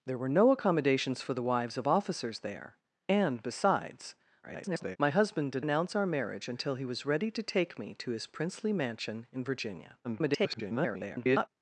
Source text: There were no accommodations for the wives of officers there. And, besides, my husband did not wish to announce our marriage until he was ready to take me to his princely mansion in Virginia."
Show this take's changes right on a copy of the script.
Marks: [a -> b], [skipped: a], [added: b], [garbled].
There were no accommodations for the wives of officers there. And, besides, [garbled] my husband did [skipped: not wish to] announce our marriage until he was ready to take me to his princely mansion in Virginia." [garbled]